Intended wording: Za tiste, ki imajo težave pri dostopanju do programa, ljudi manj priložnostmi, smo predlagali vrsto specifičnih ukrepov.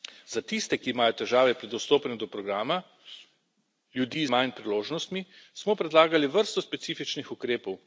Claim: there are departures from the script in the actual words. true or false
false